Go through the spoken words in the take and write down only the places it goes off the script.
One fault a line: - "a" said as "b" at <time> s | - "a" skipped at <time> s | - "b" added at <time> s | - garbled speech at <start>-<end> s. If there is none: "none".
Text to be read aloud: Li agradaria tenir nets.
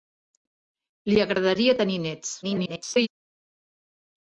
- garbled speech at 2.4-3.1 s